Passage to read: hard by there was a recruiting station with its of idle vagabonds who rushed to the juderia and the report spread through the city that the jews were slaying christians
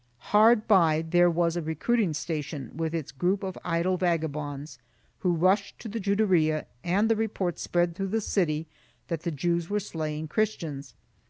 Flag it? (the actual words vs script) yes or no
yes